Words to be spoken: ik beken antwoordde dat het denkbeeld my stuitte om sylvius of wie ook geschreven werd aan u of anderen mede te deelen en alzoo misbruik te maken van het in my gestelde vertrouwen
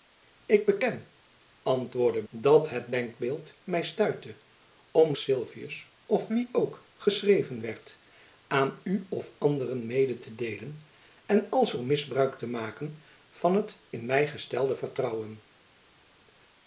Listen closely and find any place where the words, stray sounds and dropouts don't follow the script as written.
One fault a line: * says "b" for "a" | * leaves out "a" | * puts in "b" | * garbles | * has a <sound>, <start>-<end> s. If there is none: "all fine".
all fine